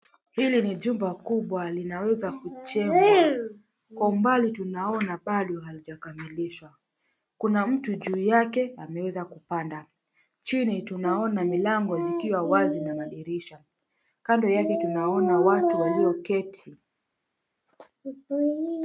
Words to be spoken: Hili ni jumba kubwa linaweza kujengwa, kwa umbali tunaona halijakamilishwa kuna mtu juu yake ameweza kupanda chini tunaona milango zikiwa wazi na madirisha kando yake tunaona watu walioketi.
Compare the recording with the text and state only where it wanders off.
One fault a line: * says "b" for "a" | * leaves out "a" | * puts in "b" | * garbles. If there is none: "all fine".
* puts in "bado"